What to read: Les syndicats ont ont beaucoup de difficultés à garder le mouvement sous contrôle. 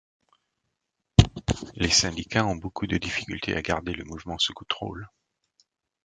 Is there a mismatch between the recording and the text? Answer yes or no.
yes